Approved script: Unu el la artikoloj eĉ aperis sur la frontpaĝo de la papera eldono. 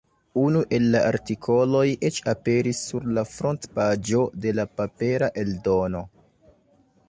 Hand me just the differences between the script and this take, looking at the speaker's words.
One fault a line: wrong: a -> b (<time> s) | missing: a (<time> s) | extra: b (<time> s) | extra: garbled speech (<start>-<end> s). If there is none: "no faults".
no faults